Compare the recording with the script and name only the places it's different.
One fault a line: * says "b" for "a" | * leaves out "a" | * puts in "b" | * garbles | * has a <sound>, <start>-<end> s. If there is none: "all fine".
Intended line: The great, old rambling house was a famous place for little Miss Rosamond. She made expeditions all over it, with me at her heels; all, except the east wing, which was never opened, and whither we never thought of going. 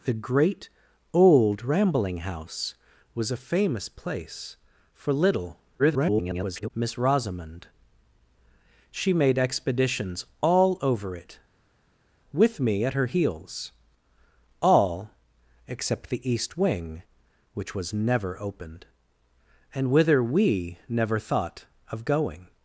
* garbles